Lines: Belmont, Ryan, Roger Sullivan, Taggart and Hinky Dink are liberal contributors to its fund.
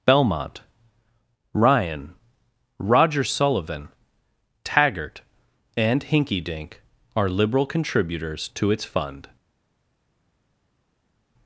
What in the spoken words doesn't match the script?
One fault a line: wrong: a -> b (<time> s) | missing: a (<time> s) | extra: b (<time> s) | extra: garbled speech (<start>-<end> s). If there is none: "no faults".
no faults